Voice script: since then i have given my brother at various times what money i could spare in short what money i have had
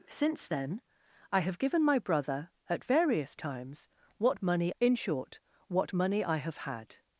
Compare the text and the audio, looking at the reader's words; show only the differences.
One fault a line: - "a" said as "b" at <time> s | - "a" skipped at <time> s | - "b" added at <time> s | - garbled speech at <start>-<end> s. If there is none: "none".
- "i could spare" skipped at 4.7 s